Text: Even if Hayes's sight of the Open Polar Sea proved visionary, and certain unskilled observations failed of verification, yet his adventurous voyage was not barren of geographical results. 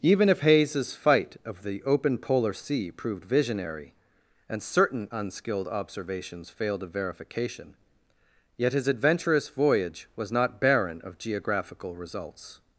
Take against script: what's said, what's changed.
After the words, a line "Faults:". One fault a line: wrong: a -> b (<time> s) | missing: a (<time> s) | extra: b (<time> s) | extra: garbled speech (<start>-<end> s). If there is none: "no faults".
Even if Hayes's fight of the Open Polar Sea proved visionary, and certain unskilled observations failed of verification, yet his adventurous voyage was not barren of geographical results.
Faults:
wrong: sight -> fight (0.9 s)